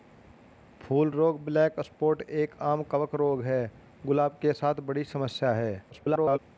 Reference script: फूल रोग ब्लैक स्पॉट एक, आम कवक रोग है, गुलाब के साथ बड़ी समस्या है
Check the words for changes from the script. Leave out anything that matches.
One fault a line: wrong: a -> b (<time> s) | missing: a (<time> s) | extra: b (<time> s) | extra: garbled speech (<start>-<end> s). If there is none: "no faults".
extra: garbled speech (5.9-6.4 s)